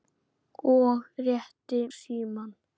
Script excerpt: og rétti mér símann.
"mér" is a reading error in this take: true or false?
true